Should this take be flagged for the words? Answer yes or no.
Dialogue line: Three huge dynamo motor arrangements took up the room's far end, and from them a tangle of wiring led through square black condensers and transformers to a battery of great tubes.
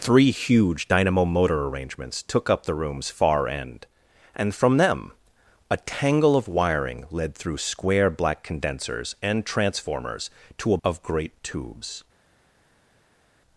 yes